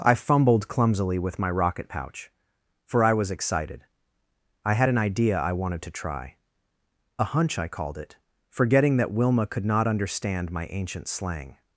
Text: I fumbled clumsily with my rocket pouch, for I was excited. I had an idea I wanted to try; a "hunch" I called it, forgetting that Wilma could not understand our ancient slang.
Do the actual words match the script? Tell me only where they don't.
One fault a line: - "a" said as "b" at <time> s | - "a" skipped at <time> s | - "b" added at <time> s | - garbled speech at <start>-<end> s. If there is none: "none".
- "our" said as "my" at 10.5 s